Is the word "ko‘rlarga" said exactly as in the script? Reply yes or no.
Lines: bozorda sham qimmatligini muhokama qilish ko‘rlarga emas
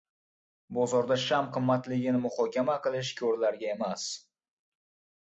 yes